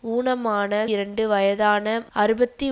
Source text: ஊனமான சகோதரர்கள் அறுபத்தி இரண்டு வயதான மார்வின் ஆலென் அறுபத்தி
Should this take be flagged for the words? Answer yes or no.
yes